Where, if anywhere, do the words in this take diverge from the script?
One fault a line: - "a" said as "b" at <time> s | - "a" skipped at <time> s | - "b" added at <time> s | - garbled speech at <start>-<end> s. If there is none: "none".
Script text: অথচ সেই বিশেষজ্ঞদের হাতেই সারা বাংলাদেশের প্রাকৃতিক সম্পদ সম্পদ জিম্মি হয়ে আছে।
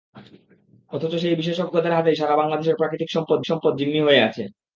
none